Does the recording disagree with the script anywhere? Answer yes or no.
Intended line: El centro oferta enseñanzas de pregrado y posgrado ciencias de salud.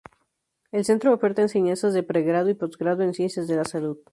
yes